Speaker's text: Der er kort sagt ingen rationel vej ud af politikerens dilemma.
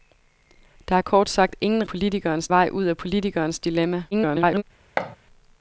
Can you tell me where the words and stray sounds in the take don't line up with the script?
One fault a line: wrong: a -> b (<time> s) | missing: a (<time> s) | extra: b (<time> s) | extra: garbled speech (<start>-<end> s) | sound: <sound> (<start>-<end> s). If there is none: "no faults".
wrong: rationel -> politikerens (1.9 s)
extra: garbled speech (4.1-4.6 s)
sound: thud (5.0-5.2 s)